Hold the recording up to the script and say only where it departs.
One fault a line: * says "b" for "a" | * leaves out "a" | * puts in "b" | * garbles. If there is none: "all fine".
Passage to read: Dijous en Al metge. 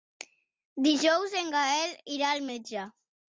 * puts in "Gaël irà"